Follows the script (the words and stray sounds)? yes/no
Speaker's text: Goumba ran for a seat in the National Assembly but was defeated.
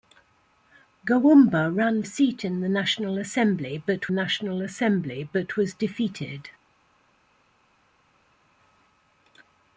no